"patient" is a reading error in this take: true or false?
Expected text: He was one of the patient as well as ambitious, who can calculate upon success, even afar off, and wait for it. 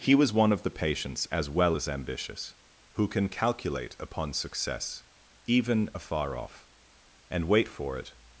true